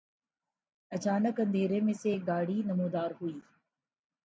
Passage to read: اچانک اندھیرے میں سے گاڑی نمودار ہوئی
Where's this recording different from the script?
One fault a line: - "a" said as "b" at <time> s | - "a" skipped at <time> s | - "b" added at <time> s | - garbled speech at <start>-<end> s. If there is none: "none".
- "ایک" added at 2.1 s